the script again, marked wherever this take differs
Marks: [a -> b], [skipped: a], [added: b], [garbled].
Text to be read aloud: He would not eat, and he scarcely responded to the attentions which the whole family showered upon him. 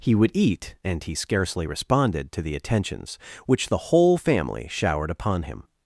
He would [skipped: not] eat, and he scarcely responded to the attentions which the whole family showered upon him.